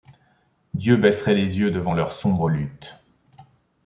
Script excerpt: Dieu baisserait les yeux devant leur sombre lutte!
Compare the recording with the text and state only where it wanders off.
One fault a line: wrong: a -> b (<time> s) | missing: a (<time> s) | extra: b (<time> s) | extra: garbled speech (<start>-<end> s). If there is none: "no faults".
no faults